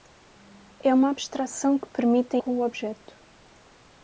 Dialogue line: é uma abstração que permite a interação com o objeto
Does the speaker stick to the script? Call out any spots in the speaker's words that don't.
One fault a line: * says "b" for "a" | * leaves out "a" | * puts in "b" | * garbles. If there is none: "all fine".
* leaves out "interação"